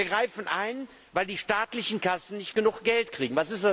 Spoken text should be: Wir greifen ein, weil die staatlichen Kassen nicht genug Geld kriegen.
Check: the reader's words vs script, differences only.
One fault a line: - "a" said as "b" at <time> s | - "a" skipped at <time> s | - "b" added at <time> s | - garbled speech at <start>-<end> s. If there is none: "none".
none